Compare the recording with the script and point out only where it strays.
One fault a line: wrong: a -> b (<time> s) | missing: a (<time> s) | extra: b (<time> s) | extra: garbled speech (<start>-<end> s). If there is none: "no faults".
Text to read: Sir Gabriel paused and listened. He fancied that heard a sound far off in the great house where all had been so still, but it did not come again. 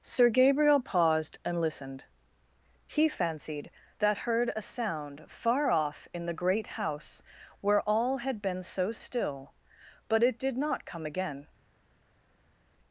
no faults